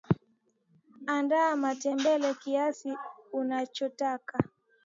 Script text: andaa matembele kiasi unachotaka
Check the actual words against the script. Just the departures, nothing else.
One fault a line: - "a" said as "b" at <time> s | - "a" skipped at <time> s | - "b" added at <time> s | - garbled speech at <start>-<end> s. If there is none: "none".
none